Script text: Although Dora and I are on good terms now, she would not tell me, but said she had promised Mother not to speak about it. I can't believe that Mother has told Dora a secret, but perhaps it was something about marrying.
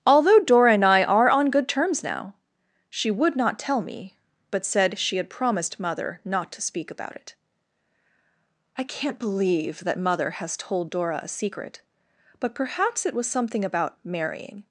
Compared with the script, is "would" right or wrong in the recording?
right